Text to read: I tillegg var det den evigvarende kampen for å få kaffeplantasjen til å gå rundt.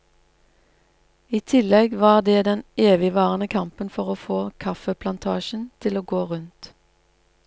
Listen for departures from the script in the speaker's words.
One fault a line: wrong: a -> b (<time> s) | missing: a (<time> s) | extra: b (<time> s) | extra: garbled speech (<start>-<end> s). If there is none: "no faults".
no faults